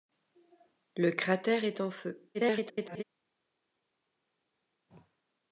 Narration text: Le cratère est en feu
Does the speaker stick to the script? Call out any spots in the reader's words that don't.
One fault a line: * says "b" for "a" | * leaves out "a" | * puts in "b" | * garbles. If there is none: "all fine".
* garbles